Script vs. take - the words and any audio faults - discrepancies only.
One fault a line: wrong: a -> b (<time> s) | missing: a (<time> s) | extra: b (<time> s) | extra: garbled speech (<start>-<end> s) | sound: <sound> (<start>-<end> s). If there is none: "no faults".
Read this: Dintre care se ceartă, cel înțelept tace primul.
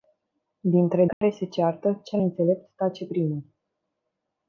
sound: dropout (1.1-1.2 s)